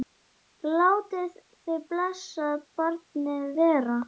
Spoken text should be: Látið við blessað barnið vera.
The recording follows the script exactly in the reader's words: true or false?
false